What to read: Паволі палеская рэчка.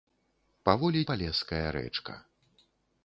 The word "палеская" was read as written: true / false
true